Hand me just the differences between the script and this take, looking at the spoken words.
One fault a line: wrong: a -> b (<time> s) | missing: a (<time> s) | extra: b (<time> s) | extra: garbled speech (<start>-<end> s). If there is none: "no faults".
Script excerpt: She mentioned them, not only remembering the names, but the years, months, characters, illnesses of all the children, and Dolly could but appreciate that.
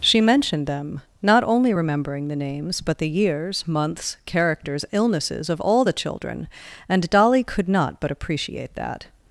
extra: not (7.7 s)